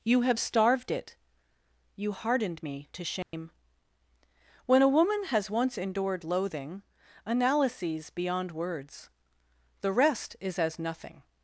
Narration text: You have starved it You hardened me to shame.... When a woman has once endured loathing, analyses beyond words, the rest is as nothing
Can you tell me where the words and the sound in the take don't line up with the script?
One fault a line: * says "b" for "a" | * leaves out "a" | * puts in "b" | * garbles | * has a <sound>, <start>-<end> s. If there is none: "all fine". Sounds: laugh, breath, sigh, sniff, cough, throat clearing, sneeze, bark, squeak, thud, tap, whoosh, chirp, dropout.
* has a dropout, 3.2-3.3 s